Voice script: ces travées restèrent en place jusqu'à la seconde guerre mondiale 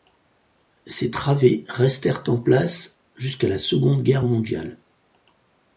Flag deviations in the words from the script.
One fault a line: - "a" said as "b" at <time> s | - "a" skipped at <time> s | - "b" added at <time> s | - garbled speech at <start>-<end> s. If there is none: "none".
none